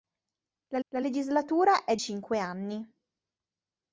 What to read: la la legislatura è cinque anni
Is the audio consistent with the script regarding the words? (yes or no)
yes